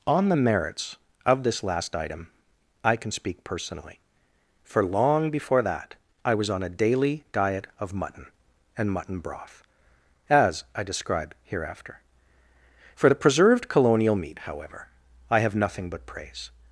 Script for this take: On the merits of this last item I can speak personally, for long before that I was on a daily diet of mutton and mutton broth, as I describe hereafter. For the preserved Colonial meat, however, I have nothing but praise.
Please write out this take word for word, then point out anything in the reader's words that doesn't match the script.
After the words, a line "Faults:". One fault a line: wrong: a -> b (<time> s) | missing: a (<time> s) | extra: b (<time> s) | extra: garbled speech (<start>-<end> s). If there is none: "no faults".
On the merits of this last item I can speak personally, for long before that I was on a daily diet of mutton and mutton broth, as I describe hereafter. For the preserved Colonial meat, however, I have nothing but praise.
Faults:
no faults